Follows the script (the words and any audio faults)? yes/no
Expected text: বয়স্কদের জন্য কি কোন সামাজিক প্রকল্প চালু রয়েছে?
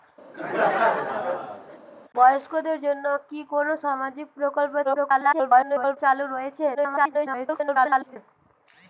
no